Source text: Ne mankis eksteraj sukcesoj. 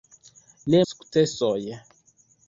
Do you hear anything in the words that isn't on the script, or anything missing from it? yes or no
yes